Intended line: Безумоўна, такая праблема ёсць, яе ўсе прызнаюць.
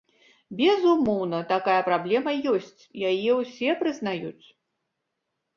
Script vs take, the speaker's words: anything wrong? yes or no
no